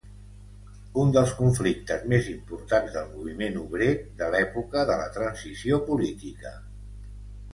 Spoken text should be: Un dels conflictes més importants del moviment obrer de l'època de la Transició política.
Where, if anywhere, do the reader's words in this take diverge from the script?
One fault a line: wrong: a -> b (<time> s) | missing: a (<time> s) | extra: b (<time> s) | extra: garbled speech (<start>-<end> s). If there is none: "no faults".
no faults